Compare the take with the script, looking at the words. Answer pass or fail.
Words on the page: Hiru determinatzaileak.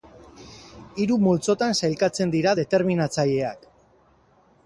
fail